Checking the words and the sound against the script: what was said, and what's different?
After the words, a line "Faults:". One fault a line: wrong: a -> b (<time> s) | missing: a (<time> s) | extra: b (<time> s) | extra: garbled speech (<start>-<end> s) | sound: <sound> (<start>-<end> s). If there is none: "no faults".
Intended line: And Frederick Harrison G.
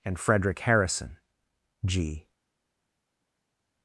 And Frederick Harrison G.
Faults:
no faults